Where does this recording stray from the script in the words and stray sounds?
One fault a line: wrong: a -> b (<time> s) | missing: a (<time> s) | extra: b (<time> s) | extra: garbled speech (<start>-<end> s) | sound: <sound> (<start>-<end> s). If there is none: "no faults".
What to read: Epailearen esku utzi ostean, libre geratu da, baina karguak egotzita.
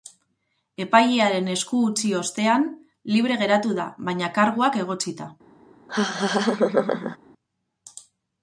sound: laugh (5.9-7.2 s)